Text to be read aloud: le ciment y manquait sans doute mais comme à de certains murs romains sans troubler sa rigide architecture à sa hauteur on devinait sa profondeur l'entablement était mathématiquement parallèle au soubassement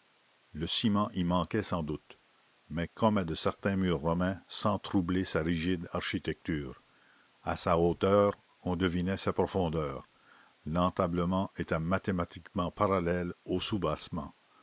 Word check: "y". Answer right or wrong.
right